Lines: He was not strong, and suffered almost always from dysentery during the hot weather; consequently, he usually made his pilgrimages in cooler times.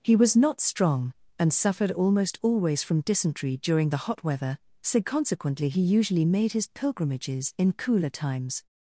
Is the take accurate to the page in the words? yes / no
no